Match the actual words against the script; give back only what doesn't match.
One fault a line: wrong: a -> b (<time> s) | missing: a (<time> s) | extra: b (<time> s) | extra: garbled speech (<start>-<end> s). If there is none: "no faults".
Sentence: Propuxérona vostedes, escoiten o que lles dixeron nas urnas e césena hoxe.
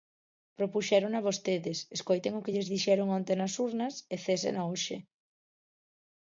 extra: onte (3.2 s)